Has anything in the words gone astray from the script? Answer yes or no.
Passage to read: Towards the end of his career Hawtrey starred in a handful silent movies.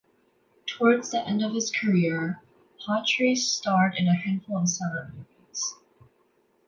yes